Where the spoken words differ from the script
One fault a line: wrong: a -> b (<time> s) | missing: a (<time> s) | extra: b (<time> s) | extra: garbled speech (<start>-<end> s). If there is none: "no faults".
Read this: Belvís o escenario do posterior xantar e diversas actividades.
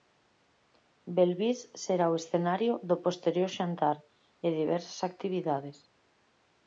extra: será (1.8 s)